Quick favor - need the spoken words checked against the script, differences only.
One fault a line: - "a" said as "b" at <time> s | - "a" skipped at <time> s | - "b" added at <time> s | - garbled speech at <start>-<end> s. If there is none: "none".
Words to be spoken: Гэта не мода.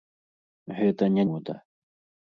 none